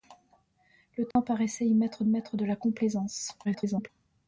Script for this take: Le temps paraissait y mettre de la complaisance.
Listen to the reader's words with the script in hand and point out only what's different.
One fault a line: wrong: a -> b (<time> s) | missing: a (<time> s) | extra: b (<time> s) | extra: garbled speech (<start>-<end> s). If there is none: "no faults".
extra: mettre (2.1 s)
extra: garbled speech (3.4-3.9 s)